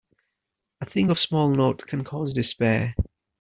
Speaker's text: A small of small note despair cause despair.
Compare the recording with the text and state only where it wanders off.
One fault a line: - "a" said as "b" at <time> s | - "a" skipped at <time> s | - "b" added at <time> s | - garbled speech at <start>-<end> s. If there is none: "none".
- "small" said as "thing" at 0.8 s
- "despair" said as "can" at 1.9 s